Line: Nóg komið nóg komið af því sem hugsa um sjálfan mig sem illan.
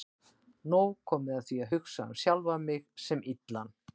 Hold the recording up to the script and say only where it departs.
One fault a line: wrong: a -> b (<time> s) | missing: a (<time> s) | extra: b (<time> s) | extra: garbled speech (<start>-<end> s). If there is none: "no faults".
missing: nóg komið (1.4 s)
wrong: sem -> að (1.6 s)